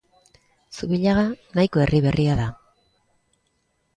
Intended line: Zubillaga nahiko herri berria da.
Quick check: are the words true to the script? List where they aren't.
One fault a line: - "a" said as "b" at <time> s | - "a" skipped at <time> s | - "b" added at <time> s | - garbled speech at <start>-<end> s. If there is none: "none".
none